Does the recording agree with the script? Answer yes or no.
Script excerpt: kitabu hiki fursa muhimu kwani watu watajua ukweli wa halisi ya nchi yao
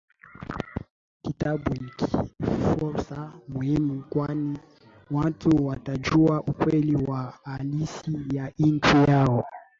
yes